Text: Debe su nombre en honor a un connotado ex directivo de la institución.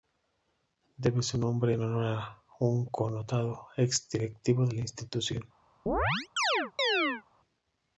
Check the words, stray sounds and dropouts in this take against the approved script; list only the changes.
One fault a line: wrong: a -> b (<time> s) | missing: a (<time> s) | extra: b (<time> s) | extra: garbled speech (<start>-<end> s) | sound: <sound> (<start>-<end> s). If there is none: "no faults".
sound: chirp (5.9-7.2 s)